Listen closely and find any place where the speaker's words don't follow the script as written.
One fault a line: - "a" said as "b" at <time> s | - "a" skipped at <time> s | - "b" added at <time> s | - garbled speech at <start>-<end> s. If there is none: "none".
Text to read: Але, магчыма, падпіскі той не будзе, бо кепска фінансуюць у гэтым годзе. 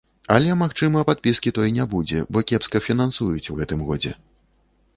none